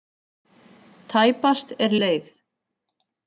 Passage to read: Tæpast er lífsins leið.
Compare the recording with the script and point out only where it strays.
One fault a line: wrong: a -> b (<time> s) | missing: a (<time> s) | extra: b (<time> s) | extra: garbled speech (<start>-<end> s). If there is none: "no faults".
missing: lífsins (1.9 s)